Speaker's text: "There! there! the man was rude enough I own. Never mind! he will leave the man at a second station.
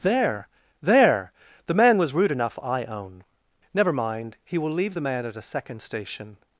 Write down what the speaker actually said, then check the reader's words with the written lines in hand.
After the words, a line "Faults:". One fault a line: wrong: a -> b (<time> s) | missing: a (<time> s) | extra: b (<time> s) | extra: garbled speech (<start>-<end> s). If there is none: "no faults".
"There! there! the man was rude enough I own. Never mind! he will leave the man at a second station.
Faults:
no faults